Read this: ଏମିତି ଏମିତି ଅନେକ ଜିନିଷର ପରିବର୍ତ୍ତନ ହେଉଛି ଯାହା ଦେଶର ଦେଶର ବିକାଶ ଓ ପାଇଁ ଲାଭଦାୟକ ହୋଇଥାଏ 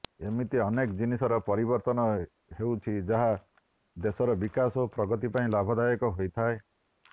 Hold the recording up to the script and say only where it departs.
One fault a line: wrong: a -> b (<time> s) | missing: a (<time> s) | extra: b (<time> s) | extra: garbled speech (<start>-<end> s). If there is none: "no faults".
missing: ଏମିତି (0.6 s)
missing: ଦେଶର (4.4 s)
extra: ପ୍ରଗତି (5.0 s)